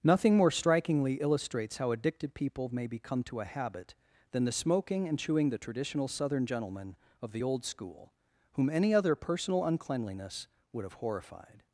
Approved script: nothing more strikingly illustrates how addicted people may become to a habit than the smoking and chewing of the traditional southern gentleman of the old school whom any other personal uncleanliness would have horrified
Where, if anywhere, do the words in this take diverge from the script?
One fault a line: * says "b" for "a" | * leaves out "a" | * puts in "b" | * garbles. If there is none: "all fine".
* leaves out "of"